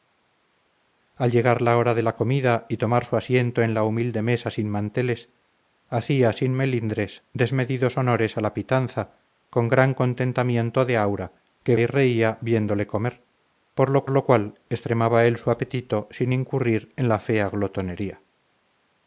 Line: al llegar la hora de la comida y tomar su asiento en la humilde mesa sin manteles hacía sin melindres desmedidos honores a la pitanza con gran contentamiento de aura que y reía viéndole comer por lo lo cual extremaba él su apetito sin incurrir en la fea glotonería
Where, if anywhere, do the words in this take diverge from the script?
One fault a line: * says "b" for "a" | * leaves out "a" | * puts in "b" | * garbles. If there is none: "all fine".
all fine